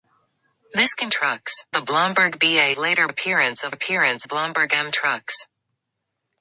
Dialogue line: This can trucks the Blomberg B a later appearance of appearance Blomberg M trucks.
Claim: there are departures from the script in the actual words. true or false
false